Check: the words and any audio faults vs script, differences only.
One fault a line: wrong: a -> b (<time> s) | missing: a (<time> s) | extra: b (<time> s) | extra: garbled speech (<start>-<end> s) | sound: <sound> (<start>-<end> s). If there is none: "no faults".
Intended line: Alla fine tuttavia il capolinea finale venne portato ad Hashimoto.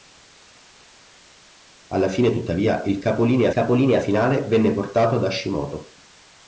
extra: capolinea (3.5 s)